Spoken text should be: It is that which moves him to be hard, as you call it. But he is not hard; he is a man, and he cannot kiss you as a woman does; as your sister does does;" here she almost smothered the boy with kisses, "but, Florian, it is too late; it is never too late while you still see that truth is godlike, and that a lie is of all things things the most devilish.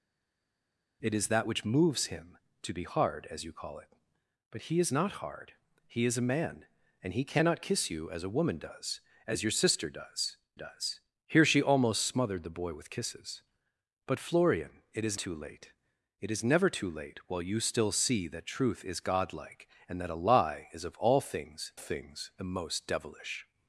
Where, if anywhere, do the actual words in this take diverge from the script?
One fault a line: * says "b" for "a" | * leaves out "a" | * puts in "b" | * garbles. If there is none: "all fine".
all fine